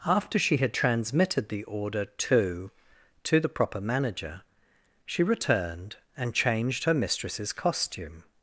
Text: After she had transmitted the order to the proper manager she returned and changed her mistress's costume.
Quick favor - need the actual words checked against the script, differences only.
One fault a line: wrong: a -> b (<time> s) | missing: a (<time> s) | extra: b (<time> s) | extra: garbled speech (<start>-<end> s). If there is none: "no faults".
extra: to (3.2 s)